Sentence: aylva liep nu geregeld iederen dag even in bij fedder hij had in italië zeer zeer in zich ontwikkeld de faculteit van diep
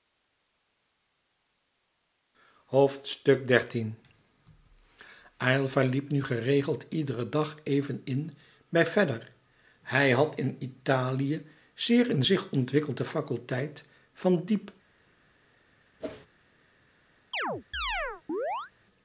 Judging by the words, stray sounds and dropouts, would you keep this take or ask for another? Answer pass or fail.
fail